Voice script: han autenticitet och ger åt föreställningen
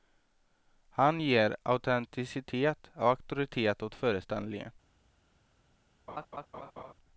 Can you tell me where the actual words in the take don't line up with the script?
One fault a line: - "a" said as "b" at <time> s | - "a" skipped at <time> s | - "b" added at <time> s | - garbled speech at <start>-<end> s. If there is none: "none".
- "ger" added at 1.2 s
- "ger" said as "auktoritet" at 3.1 s